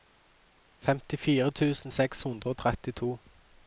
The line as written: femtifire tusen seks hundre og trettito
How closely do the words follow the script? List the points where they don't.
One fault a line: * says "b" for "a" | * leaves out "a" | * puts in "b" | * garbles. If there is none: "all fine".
all fine